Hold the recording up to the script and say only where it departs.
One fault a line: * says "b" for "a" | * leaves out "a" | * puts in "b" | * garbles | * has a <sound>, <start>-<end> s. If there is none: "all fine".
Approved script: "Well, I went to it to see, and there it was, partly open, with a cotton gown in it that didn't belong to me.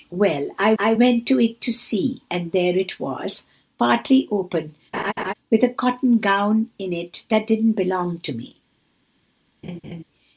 * puts in "I"
* has a laugh, 4.9-5.3 s
* has a laugh, 9.6-10.0 s